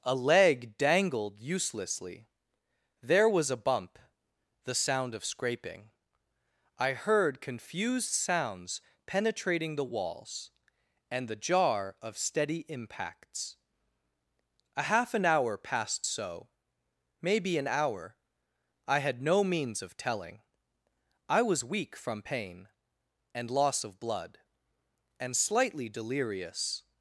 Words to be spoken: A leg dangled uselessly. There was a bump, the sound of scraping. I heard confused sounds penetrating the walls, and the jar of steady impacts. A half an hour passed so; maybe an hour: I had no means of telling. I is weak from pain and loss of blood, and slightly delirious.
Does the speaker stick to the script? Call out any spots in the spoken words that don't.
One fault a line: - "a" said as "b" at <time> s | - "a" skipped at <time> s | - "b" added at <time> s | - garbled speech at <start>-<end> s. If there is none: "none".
- "is" said as "was" at 21.4 s